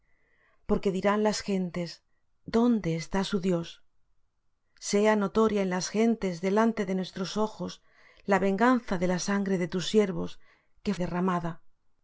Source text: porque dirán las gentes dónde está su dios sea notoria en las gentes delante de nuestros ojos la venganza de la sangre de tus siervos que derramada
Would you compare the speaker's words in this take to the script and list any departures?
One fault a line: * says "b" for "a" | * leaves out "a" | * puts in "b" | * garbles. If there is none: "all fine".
all fine